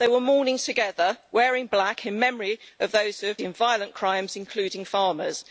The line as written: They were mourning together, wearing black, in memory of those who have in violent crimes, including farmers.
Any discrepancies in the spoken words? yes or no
no